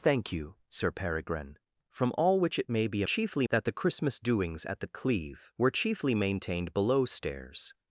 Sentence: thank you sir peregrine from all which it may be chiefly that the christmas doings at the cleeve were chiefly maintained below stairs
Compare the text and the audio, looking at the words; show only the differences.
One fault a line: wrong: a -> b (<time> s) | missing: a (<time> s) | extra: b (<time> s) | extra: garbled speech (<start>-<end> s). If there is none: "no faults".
no faults